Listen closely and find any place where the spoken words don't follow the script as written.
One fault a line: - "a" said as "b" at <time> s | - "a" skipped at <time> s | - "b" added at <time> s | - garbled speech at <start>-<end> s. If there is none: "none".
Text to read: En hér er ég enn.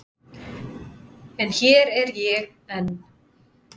none